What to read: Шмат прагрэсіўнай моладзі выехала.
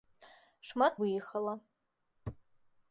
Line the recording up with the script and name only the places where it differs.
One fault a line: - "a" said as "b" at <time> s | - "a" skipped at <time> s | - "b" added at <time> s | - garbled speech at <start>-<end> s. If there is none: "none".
- "прагрэсіўнай моладзі" skipped at 0.9 s